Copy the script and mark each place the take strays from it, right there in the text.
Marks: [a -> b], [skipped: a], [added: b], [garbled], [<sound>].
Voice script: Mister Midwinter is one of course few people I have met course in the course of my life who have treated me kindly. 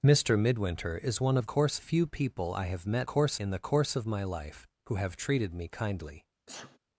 Mister Midwinter is one of course few people I have met course in the course of my life who have treated me kindly. [sneeze]